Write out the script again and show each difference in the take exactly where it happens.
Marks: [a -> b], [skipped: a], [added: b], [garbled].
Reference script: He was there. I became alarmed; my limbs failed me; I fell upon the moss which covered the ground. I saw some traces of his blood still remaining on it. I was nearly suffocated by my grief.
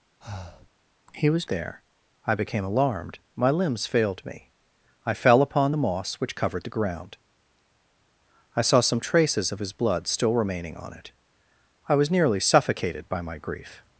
He was there. I became alarmed; my limbs failed me; I fell upon the moss which covered the ground. I saw some traces of his blood still remaining on it. I was nearly suffocated by my grief.